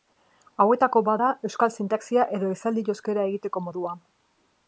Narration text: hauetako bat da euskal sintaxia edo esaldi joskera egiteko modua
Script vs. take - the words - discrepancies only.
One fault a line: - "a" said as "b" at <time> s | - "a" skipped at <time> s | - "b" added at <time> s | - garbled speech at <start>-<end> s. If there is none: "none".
none